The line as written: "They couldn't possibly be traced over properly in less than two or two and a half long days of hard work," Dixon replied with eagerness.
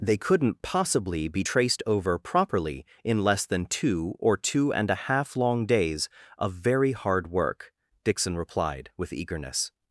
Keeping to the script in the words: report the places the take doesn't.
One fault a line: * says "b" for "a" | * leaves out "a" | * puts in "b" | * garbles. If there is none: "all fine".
* puts in "very"